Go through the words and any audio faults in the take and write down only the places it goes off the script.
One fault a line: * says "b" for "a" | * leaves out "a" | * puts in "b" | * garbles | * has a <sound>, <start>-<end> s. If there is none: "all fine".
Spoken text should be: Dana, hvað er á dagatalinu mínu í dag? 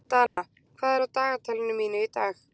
* has a dropout, 0.3-0.4 s